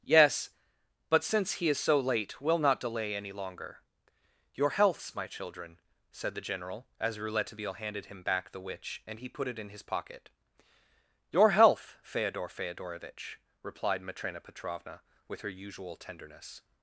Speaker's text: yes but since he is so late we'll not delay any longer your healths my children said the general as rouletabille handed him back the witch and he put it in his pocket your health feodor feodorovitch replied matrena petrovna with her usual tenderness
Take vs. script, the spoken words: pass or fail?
pass